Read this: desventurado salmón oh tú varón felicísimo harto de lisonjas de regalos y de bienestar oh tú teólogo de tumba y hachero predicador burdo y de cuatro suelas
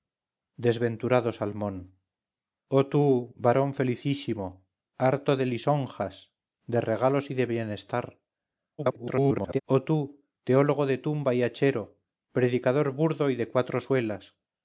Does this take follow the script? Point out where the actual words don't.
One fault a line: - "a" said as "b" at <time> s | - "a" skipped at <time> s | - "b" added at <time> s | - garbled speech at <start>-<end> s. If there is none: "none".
- garbled speech at 8.8-9.6 s